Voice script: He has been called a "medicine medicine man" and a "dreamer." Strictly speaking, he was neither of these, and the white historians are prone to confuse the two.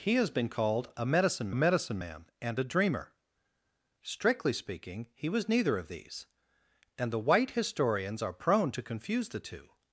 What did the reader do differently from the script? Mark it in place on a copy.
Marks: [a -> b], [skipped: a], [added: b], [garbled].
He has been called a "medicine medicine man" and a "dreamer." Strictly speaking, he was neither of these, and the white historians are prone to confuse the two.